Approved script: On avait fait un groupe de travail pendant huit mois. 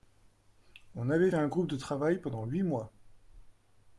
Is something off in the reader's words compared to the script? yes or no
yes